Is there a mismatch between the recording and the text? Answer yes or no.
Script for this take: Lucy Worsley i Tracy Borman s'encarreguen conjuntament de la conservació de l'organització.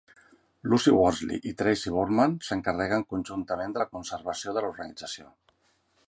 no